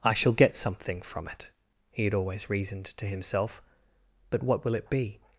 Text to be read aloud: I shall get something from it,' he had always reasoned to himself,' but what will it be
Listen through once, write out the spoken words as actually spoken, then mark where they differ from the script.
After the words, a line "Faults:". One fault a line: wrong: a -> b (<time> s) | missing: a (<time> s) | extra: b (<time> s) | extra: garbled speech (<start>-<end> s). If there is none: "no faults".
I shall get something from it,' he had always reasoned to himself,' but what will it be
Faults:
no faults